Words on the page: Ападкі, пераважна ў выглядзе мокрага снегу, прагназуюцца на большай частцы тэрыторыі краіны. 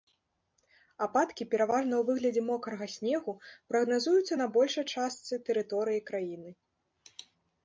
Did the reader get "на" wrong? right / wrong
right